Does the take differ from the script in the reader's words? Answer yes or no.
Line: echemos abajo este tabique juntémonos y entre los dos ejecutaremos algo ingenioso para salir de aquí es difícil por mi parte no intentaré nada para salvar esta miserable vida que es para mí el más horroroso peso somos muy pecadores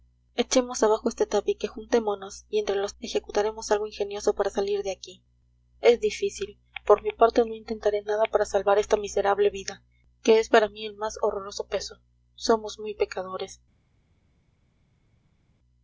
yes